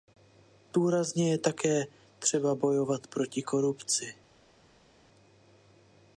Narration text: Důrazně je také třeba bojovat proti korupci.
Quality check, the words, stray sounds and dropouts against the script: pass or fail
pass